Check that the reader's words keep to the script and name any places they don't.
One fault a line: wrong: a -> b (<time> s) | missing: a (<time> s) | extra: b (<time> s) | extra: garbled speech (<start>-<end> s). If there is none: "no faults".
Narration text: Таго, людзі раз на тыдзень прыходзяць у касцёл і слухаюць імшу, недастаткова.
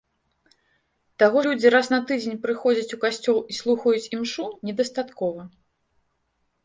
no faults